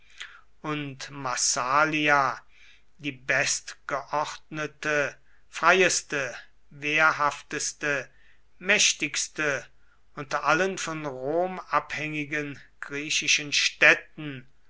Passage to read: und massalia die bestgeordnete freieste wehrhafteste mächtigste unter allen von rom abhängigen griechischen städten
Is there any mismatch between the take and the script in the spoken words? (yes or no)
no